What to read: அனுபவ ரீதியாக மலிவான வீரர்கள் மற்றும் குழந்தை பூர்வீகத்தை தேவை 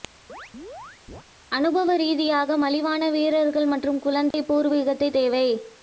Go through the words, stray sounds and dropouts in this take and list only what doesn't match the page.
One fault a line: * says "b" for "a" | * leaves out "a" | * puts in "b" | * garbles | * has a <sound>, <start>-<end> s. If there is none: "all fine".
* has a chirp, 0.3-1.2 s
* has a dropout, 4.3-4.3 s